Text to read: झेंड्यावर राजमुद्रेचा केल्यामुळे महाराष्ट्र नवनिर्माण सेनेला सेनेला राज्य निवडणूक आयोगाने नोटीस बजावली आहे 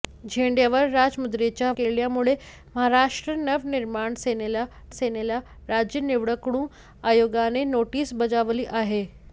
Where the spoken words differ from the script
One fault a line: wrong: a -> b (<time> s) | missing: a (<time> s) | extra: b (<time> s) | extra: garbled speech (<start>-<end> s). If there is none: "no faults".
no faults